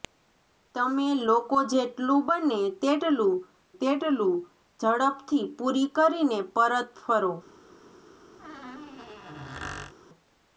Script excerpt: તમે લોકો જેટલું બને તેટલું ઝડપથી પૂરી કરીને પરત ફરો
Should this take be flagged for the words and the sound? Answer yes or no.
yes